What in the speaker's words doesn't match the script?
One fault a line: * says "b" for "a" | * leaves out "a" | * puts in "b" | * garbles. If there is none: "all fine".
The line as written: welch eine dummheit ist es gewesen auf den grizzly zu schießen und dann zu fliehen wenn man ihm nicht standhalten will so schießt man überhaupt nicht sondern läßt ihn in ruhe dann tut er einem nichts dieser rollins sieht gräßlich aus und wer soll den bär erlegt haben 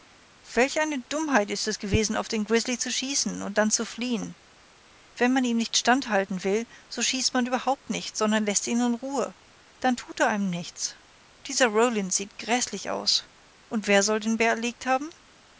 all fine